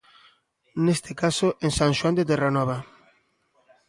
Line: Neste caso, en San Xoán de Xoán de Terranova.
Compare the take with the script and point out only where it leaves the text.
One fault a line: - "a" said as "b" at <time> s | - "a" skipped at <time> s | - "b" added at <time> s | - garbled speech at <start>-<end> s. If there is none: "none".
- "Xoán de" skipped at 2.3 s